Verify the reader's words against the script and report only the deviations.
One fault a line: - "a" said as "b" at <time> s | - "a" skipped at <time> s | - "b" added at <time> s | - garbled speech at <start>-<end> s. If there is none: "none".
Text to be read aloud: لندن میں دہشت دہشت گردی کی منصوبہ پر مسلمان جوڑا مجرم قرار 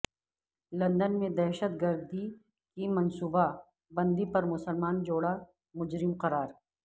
- "دہشت" skipped at 1.7 s
- "بندی" added at 3.9 s